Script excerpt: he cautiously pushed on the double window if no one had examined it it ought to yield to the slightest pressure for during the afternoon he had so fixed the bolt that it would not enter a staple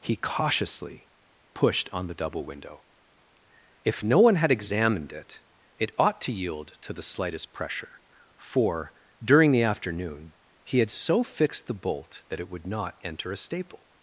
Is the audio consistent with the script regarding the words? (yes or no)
yes